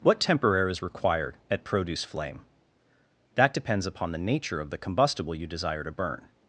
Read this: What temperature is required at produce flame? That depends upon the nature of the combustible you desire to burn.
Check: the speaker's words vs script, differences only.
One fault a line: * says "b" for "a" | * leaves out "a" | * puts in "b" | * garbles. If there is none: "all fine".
all fine